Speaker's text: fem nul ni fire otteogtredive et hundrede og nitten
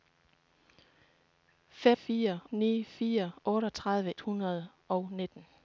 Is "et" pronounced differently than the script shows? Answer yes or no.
yes